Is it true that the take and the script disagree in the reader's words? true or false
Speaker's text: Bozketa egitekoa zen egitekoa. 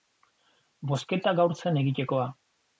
true